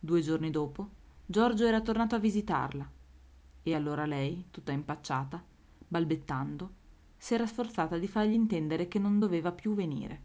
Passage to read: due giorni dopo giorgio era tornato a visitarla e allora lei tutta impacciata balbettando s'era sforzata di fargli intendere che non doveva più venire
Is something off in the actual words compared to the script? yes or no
no